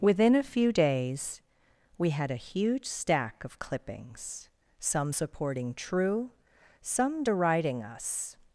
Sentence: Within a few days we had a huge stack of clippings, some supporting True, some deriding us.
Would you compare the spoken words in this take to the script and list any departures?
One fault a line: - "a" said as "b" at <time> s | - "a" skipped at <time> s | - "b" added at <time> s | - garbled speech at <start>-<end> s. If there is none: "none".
none